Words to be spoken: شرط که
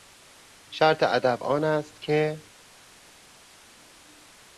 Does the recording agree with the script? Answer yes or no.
no